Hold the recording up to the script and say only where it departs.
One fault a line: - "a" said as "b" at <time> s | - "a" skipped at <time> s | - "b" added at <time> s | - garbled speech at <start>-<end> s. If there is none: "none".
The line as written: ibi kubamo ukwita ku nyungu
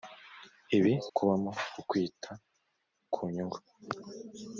none